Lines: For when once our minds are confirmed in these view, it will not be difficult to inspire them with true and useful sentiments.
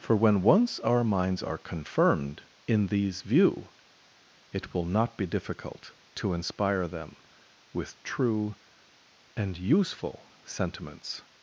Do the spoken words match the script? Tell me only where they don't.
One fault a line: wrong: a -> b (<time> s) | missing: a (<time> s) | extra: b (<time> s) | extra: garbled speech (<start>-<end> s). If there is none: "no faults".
no faults